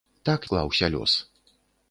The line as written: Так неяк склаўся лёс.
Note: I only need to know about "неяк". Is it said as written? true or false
false